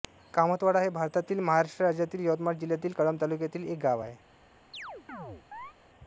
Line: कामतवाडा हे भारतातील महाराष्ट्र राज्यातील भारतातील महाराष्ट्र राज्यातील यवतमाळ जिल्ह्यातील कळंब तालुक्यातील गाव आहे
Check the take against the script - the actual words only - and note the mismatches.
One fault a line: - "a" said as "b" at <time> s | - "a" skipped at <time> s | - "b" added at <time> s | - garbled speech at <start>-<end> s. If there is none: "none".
- "भारतातील महाराष्ट्र राज्यातील" skipped at 2.2 s
- "एक" added at 3.7 s